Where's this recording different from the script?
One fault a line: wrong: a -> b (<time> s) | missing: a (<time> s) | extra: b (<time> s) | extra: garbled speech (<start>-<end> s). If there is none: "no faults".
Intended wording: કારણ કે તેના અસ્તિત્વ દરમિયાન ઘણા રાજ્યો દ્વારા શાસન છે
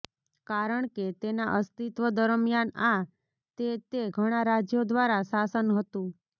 extra: આ તે તે (2.9 s)
wrong: છે -> હતું (5.7 s)